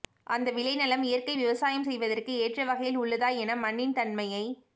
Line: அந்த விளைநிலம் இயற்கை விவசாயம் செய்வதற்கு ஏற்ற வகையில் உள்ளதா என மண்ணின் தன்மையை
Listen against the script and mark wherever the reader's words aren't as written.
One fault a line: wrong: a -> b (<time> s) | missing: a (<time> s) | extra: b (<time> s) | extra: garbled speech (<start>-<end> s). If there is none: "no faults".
no faults